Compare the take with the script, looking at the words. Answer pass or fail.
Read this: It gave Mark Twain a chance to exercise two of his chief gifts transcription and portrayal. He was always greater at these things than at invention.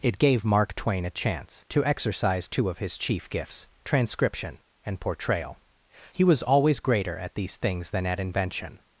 pass